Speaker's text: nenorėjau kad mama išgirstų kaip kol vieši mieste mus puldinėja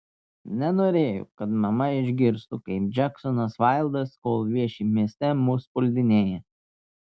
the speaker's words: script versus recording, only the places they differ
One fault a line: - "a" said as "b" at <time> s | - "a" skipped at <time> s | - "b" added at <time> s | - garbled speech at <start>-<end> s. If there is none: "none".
- "džeksonas vaildas" added at 3.0 s